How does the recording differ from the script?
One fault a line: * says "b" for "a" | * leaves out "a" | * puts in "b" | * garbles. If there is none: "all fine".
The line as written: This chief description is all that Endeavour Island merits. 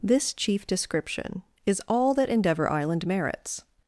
all fine